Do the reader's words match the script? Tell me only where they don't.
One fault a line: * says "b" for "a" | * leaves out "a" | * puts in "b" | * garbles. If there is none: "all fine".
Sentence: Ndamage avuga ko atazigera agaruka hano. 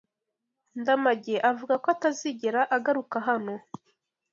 all fine